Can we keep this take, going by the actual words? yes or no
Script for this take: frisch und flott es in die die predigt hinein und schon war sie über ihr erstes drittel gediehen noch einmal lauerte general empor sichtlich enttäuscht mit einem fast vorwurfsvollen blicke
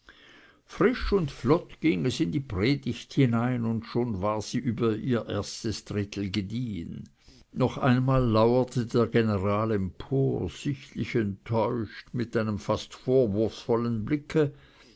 no